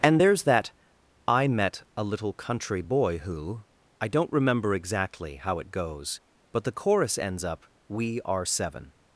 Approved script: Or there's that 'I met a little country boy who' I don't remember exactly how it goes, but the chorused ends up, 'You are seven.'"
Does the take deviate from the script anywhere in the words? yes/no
yes